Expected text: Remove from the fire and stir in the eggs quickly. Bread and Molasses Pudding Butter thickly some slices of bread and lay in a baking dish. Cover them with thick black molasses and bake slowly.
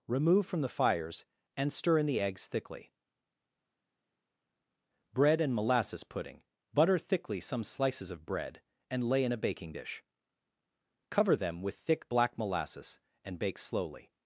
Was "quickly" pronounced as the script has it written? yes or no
no